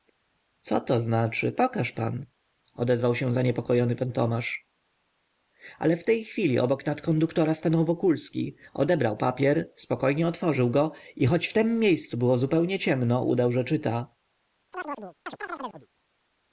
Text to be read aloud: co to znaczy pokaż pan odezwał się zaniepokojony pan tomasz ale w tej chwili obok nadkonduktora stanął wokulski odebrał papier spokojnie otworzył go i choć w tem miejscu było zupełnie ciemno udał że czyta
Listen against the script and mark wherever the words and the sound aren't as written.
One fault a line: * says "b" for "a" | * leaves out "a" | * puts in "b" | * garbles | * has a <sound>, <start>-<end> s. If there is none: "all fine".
* has a chirp, 14.7-15.9 s